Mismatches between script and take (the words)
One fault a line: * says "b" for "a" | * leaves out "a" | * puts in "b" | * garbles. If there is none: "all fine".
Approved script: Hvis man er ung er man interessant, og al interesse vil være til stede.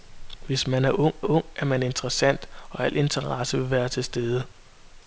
* puts in "ung"